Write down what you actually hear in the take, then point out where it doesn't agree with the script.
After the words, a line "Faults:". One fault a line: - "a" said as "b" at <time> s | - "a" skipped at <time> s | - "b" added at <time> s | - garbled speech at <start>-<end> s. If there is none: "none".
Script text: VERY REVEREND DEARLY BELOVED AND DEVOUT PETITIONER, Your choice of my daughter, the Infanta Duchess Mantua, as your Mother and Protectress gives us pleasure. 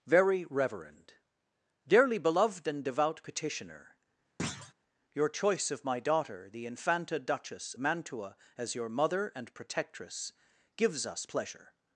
VERY REVEREND DEARLY BELOVED AND DEVOUT PETITIONER, Your choice of my daughter, the Infanta Duchess Mantua, as your Mother and Protectress gives us pleasure.
Faults:
none